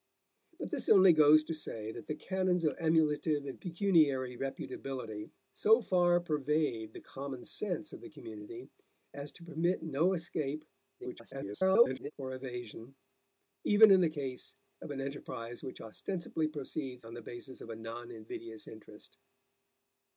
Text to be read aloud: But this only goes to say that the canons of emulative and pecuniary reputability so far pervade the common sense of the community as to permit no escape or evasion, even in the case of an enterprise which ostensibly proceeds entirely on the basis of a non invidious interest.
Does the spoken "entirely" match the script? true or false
false